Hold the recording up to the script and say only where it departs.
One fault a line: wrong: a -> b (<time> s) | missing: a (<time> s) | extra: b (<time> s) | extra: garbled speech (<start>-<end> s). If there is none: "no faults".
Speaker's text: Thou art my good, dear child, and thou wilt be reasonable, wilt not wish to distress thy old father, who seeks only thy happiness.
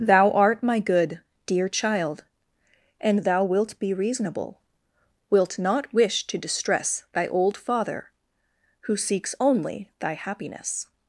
no faults